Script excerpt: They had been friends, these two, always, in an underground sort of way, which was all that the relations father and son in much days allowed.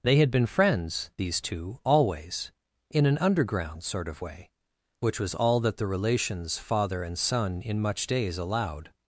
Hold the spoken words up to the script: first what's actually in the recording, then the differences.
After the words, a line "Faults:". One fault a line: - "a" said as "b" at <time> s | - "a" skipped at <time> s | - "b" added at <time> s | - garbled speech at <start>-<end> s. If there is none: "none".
They had been friends, these two, always, in an underground sort of way, which was all that the relations father and son in much days allowed.
Faults:
none